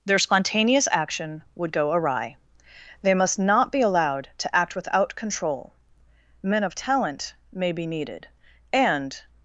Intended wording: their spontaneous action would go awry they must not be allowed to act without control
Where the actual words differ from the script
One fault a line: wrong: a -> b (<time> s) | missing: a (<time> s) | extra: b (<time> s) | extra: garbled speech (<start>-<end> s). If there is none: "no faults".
extra: men of talent may be needed and (6.4 s)